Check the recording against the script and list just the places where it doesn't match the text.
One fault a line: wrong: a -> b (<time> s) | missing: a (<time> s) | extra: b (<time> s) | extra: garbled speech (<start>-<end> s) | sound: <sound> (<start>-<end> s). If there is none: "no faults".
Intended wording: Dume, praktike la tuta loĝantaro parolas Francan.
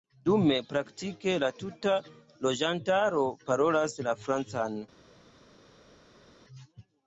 extra: la (4.1 s)